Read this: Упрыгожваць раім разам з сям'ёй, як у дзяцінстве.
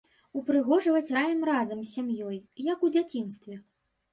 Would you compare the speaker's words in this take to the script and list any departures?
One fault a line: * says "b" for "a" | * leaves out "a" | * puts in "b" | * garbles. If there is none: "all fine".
all fine